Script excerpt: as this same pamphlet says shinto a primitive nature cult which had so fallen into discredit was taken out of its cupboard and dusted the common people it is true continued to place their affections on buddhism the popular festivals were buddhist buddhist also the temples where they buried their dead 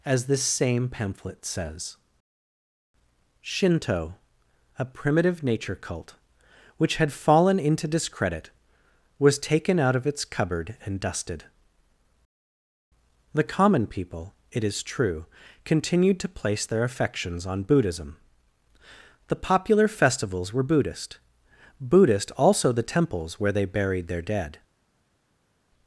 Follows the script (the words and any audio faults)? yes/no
no